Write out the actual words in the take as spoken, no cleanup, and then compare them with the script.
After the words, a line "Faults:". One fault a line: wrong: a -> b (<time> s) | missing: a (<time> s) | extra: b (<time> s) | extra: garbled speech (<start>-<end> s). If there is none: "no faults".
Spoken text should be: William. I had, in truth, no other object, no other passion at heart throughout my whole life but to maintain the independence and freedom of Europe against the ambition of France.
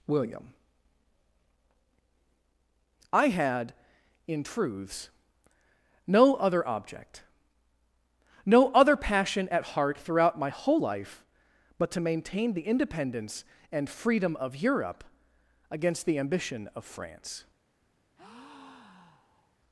William. I had, in truths, no other object, no other passion at heart throughout my whole life but to maintain the independence and freedom of Europe against the ambition of France.
Faults:
wrong: truth -> truths (4.4 s)